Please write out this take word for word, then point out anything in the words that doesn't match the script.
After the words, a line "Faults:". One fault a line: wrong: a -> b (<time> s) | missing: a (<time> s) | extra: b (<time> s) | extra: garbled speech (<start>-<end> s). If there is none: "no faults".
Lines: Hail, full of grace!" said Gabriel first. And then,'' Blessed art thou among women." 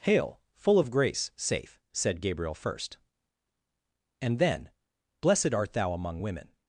Hail, full of grace!" safe said Gabriel first. And then,'' Blessed art thou among women."
Faults:
extra: safe (1.4 s)